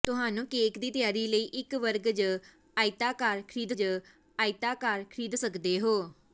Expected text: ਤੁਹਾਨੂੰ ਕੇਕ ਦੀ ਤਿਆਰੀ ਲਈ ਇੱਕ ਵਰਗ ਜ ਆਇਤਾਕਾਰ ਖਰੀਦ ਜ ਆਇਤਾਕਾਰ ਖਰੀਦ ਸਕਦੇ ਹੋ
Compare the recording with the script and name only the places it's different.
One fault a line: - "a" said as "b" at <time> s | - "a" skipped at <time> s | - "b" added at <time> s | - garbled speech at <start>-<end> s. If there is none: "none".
none